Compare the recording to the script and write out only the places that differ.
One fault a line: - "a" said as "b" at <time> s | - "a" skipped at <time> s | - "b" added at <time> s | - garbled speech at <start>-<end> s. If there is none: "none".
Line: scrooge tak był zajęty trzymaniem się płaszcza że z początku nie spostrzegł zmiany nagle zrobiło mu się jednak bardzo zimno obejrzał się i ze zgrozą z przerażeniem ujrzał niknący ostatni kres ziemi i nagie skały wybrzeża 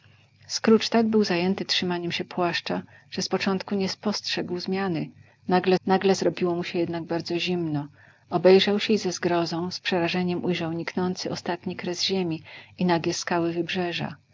- "nagle" added at 5.9 s